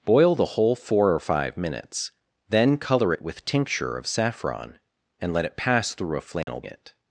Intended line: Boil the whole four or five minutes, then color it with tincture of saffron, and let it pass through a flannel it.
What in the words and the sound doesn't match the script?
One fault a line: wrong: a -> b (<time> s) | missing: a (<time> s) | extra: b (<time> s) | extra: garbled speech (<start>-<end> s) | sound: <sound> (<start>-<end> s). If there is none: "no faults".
sound: dropout (6.4-6.5 s)